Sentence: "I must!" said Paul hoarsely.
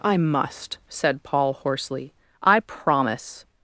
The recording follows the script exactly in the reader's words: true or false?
false